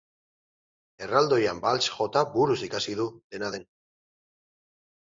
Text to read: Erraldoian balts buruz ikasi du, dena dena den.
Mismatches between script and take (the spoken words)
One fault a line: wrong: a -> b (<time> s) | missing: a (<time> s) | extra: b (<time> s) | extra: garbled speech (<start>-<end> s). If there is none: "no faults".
extra: jota (2.0 s)
missing: dena (3.5 s)